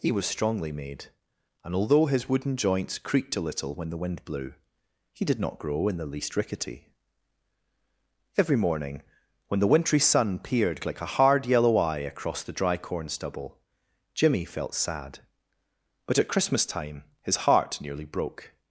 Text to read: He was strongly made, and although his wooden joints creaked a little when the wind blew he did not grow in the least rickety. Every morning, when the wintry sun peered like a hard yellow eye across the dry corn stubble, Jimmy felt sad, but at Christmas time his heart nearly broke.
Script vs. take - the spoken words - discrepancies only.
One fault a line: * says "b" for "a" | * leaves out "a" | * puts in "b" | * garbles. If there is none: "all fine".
all fine